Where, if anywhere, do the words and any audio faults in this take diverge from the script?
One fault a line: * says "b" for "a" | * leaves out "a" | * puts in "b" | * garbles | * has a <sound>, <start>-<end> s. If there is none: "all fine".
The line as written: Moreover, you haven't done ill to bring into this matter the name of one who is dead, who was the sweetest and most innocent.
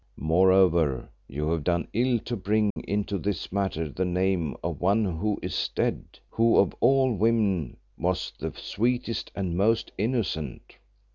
* says "have" for "haven't"
* has a dropout, 2.7-2.8 s
* puts in "of all women"